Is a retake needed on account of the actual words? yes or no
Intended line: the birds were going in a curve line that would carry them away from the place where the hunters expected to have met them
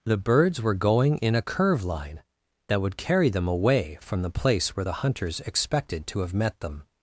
no